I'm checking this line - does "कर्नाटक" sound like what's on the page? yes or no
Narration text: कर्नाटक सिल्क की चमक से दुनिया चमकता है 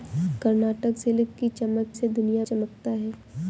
yes